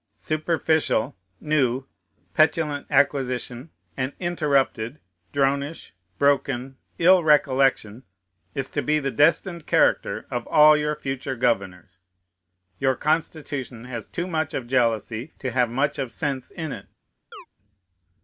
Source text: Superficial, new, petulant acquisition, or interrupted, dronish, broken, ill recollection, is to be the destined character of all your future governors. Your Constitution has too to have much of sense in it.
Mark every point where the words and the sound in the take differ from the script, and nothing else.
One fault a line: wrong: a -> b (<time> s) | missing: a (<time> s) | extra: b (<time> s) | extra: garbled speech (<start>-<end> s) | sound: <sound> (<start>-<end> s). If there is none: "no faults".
wrong: or -> and (4.0 s)
extra: much of jealousy (14.3 s)
sound: chirp (17.3-17.5 s)